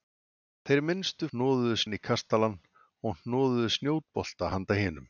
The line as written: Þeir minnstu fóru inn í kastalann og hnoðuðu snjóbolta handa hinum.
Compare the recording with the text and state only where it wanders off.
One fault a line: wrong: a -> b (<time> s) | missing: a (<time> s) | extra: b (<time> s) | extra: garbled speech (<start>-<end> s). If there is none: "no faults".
wrong: fóru -> hnoðuðu (1.3 s)